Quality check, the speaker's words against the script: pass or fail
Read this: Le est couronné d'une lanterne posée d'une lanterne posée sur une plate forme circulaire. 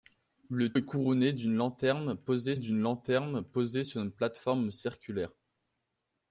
pass